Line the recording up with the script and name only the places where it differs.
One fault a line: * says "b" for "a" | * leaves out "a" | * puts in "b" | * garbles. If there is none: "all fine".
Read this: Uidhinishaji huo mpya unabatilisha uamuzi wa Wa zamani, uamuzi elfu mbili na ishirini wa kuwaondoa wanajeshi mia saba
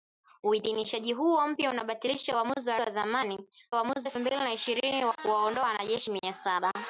all fine